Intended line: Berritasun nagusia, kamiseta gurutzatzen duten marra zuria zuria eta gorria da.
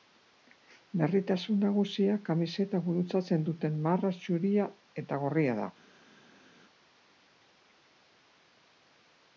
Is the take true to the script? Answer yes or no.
no